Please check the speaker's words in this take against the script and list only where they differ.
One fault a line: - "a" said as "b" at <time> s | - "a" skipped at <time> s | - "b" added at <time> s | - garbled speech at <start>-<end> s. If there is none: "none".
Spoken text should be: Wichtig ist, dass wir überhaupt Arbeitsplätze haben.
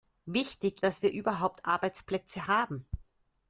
- "ist" skipped at 0.8 s